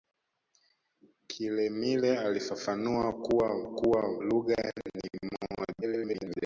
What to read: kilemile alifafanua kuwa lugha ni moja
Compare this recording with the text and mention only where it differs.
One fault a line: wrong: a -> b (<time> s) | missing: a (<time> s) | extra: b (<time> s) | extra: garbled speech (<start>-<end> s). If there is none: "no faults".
extra: kuwa (3.7 s)
extra: garbled speech (5.8-6.4 s)